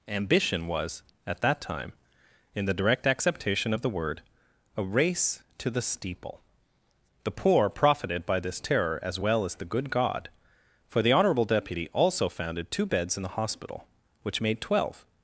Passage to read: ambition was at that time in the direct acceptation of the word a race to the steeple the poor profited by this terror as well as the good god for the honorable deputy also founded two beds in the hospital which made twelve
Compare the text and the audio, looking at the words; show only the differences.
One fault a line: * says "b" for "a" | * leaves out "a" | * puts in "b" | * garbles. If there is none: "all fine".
all fine